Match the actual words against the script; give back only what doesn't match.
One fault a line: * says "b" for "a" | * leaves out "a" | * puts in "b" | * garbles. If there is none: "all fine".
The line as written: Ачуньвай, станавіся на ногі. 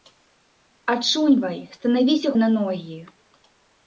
all fine